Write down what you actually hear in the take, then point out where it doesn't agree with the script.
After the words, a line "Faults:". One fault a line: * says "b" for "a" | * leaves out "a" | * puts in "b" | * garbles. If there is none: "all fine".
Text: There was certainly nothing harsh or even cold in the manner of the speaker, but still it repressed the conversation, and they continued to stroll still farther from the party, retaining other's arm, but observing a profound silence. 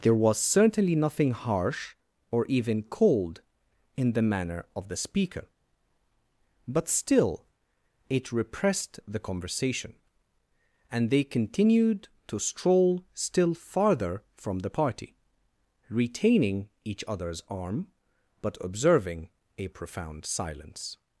There was certainly nothing harsh or even cold in the manner of the speaker, but still it repressed the conversation, and they continued to stroll still farther from the party, retaining each other's arm, but observing a profound silence.
Faults:
* puts in "each"